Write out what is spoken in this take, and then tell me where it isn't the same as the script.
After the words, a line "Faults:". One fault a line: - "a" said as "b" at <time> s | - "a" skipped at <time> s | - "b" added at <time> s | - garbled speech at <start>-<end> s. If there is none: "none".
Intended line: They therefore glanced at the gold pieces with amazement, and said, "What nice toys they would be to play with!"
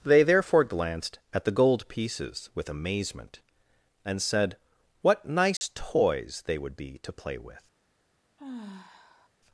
They therefore glanced at the gold pieces with amazement, and said, "What nice toys they would be to play with!"
Faults:
none